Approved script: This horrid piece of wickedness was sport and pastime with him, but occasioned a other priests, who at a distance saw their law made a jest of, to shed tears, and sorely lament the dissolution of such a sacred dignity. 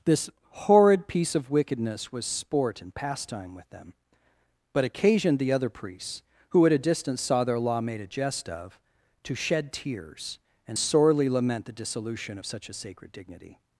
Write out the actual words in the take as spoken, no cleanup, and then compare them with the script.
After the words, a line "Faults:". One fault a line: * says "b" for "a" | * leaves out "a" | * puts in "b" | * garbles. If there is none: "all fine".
This horrid piece of wickedness was sport and pastime with them, but occasioned the other priests, who at a distance saw their law made a jest of, to shed tears, and sorely lament the dissolution of such a sacred dignity.
Faults:
* says "them" for "him"
* says "the" for "a"